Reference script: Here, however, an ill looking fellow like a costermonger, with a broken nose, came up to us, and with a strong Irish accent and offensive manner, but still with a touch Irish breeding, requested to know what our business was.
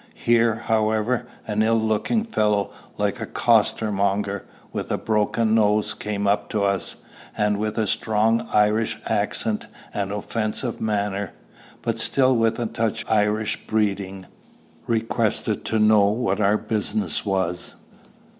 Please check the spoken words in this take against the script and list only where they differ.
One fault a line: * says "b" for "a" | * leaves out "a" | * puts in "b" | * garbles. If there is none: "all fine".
all fine